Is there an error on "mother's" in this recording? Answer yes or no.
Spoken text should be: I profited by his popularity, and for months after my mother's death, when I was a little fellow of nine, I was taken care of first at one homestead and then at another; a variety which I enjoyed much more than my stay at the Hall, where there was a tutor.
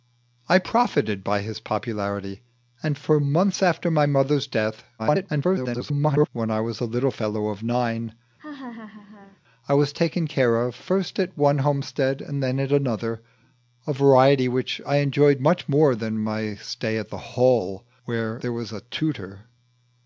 no